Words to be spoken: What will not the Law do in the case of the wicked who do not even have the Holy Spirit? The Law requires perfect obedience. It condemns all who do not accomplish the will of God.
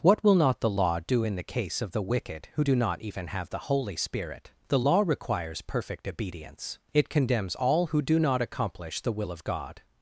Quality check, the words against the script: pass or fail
pass